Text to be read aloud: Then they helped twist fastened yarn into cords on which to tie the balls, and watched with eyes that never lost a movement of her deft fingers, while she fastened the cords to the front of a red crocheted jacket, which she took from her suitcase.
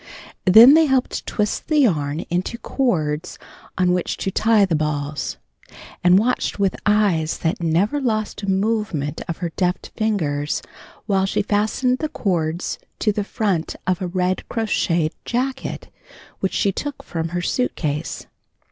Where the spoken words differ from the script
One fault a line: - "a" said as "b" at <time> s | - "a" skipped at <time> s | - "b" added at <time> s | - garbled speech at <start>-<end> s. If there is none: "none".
- "fastened" said as "the" at 1.7 s